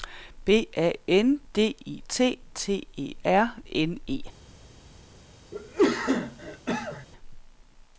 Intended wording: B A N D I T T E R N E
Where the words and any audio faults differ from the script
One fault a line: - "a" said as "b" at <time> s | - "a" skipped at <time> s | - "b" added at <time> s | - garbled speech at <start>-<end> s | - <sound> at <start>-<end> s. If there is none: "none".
- cough at 5.5-7.1 s